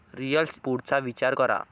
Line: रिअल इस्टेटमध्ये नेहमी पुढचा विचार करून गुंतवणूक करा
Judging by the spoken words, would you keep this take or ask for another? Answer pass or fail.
fail